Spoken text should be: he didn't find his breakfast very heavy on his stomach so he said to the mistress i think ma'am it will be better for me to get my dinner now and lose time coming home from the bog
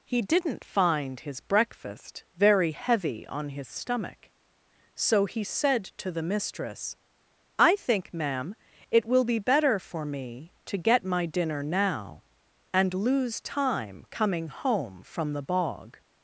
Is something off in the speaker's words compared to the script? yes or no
no